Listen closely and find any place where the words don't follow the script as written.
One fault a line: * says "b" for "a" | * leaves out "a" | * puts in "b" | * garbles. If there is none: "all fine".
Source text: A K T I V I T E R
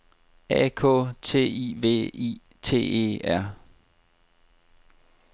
all fine